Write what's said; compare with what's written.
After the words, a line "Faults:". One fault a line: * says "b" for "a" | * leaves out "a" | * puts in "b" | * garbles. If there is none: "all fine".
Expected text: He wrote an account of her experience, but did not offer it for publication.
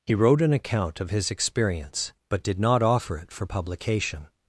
He wrote an account of his experience, but did not offer it for publication.
Faults:
* says "his" for "her"